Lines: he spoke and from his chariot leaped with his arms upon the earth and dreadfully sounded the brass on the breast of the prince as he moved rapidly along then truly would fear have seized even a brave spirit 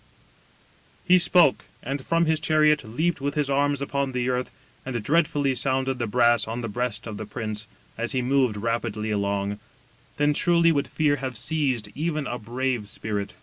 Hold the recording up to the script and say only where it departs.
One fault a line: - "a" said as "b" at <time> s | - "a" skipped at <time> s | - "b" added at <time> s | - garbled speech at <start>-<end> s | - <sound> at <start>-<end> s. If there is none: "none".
none